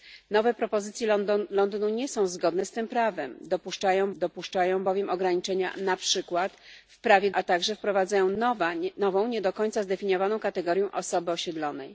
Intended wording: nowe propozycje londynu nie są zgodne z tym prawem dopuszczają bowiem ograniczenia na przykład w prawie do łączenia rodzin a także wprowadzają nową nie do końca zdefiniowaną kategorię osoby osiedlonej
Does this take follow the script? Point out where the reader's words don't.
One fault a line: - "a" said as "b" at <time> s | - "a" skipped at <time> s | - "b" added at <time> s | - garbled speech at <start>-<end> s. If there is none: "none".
- "dopuszczają" added at 4.1 s
- "do łączenia rodzin" skipped at 7.3 s